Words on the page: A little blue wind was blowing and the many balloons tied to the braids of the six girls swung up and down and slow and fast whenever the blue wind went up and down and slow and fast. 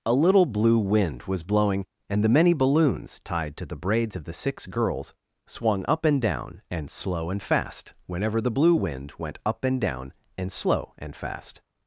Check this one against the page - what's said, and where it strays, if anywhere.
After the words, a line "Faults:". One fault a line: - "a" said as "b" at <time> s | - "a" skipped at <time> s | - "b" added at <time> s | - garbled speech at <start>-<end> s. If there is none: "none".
A little blue wind was blowing and the many balloons tied to the braids of the six girls swung up and down and slow and fast whenever the blue wind went up and down and slow and fast.
Faults:
none